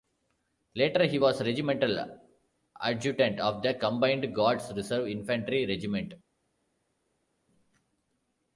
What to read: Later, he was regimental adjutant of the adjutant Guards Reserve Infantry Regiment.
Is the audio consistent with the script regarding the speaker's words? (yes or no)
no